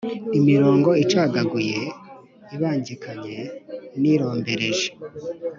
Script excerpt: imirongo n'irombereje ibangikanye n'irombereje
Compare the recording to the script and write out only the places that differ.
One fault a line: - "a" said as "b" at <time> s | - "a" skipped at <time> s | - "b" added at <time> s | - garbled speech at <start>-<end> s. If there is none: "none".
- "n'irombereje" said as "icagaguye" at 1.0 s